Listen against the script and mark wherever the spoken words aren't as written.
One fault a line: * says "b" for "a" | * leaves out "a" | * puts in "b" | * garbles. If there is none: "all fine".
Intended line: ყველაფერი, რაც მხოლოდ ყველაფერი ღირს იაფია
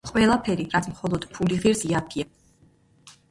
* says "ფული" for "ყველაფერი"